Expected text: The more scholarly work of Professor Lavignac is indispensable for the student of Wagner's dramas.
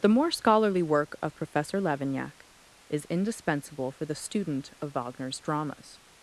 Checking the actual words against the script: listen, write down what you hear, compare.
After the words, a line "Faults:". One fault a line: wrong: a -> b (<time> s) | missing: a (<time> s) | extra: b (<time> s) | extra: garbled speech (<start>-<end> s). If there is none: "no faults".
The more scholarly work of Professor Lavignac is indispensable for the student of Wagner's dramas.
Faults:
no faults